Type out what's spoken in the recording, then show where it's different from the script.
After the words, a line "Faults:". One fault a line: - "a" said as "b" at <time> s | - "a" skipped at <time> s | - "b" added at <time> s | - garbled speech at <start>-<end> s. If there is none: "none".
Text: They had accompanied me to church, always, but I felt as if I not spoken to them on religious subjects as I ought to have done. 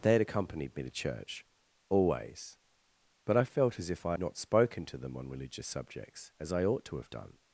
They had accompanied me to church, always, but I felt as if I not spoken to them on religious subjects as I ought to have done.
Faults:
none